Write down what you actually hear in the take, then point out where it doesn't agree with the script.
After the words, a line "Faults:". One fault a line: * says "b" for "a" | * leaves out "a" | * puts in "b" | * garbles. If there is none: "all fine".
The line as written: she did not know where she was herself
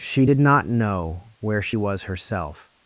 she did not know where she was herself
Faults:
all fine